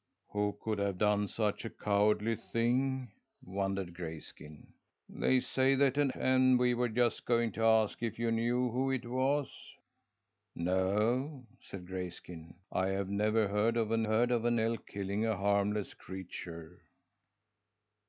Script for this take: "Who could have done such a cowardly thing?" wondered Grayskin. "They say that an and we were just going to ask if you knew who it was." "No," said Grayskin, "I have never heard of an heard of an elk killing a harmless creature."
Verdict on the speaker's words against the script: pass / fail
pass